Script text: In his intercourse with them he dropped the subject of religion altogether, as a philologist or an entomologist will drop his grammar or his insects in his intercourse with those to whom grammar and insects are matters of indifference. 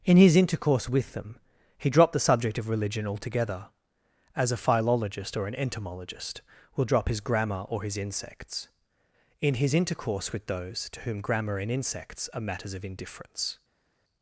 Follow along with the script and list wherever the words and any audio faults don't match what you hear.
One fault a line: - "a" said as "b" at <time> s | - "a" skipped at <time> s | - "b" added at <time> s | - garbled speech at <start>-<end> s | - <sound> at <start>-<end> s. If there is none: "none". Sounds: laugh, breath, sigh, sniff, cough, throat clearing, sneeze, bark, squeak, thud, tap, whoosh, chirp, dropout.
none